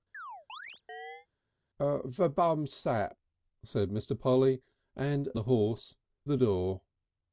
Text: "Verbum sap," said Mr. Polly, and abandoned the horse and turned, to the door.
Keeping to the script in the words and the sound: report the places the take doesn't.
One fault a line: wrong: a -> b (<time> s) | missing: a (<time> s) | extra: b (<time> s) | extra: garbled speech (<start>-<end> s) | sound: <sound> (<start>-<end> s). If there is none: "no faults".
sound: chirp (0.1-1.3 s)
missing: abandoned (5.3 s)
missing: and turned to (6.0 s)